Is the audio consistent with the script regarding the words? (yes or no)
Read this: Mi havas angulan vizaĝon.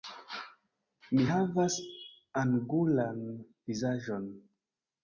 yes